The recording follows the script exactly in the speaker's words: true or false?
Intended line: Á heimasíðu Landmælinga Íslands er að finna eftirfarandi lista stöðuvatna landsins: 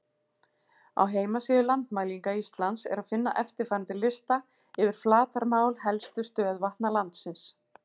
false